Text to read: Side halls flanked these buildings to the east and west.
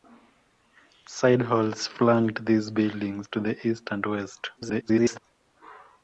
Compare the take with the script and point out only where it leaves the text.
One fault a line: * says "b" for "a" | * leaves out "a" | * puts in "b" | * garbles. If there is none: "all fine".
* garbles